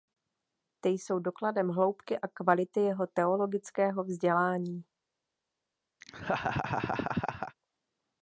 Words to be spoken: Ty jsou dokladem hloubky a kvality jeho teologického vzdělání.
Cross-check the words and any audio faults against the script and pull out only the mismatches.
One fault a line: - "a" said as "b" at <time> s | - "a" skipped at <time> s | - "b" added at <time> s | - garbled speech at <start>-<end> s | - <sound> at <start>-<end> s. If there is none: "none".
- laugh at 6.0-7.6 s